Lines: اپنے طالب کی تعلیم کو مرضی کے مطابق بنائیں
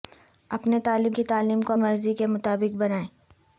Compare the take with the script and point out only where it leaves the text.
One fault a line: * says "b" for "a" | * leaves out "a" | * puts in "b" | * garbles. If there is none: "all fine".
all fine